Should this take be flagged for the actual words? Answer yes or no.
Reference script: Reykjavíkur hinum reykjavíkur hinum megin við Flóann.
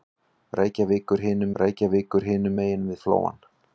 no